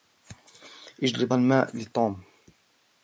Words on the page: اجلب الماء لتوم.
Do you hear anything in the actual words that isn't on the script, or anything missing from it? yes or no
no